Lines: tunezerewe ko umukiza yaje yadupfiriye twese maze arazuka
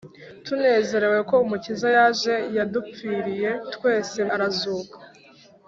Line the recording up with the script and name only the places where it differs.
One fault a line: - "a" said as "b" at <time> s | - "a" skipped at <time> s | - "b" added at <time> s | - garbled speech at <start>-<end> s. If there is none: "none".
- "maze" skipped at 4.2 s